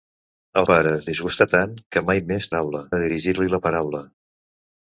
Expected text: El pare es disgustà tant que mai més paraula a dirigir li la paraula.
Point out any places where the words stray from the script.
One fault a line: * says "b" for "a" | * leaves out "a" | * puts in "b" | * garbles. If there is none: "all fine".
all fine